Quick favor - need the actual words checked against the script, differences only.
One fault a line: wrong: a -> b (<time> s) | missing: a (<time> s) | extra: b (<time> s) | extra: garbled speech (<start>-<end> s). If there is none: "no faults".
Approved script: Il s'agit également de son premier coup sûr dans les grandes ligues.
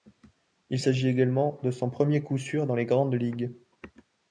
no faults